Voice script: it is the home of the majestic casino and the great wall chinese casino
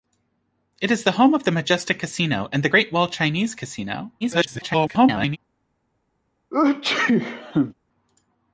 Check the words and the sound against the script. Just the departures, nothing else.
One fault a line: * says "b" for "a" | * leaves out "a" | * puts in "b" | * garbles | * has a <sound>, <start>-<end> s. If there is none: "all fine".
* garbles
* has a sneeze, 6.5-7.7 s